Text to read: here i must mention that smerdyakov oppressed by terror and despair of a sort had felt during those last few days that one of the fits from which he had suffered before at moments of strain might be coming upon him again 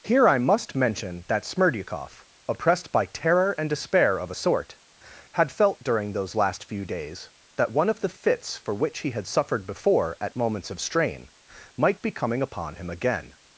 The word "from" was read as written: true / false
false